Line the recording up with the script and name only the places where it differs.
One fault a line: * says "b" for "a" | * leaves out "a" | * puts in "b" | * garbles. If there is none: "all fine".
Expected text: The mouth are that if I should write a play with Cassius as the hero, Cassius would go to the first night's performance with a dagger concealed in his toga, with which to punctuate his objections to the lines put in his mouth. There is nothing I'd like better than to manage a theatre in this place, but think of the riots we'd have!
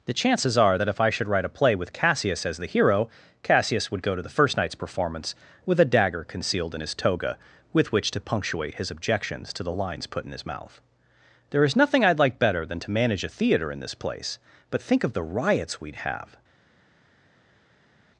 * says "chances" for "mouth"